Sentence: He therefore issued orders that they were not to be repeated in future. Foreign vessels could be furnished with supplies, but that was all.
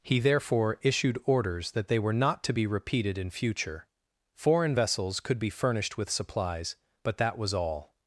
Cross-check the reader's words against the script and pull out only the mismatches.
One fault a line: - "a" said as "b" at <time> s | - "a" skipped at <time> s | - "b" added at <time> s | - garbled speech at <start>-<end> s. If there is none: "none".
none